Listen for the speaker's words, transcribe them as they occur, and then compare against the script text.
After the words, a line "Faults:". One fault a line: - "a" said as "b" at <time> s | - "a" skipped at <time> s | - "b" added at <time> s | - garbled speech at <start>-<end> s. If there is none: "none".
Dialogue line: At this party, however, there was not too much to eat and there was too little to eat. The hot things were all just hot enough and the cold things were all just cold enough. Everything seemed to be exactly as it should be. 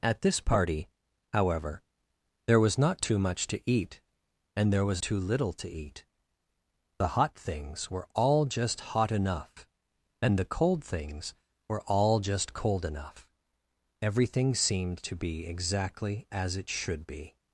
At this party, however, there was not too much to eat and there was too little to eat. The hot things were all just hot enough and the cold things were all just cold enough. Everything seemed to be exactly as it should be.
Faults:
none